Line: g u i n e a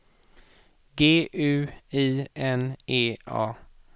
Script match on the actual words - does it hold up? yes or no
yes